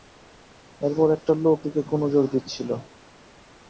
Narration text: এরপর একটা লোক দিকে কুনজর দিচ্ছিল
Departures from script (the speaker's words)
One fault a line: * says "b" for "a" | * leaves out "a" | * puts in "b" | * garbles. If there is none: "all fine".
all fine